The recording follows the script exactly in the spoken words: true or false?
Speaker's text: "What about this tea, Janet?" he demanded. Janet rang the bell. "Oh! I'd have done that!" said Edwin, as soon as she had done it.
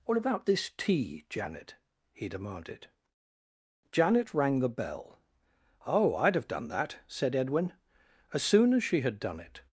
true